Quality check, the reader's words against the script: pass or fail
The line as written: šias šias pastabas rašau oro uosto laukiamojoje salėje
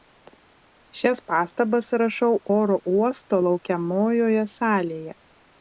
fail